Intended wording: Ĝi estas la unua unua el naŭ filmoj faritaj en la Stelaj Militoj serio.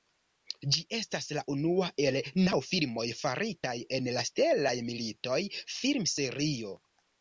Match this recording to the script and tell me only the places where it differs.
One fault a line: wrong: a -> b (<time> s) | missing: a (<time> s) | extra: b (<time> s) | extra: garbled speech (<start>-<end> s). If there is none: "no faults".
missing: unua (1.9 s)
extra: film (5.8 s)